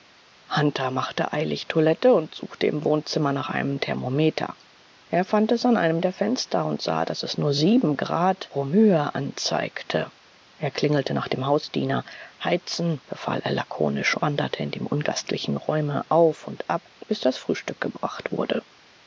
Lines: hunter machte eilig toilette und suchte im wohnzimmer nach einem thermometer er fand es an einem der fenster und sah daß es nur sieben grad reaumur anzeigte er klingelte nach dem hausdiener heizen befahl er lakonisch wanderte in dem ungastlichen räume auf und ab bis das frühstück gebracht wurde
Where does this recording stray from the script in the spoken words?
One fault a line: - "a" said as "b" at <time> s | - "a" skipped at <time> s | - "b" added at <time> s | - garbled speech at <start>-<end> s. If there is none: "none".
none